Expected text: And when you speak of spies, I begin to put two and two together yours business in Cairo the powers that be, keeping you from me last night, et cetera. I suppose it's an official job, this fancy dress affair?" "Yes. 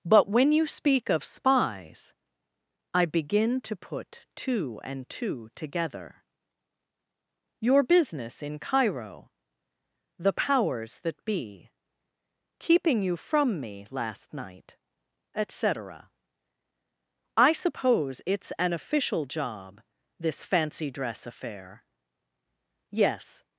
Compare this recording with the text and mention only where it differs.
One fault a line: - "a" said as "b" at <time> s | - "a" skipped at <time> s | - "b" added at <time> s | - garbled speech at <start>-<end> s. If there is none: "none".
- "And" said as "But" at 0.0 s
- "yours" said as "your" at 7.6 s